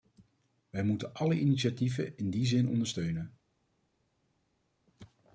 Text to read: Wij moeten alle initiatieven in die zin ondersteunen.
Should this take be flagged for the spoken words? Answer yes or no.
no